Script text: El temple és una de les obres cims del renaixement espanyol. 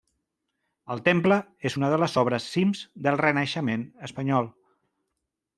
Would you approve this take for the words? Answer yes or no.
yes